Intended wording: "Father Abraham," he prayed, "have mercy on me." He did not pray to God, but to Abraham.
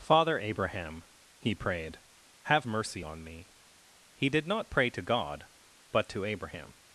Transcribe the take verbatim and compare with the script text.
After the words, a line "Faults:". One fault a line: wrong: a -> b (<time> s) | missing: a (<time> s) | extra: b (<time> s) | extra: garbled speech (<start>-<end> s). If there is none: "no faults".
"Father Abraham," he prayed, "have mercy on me." He did not pray to God, but to Abraham.
Faults:
no faults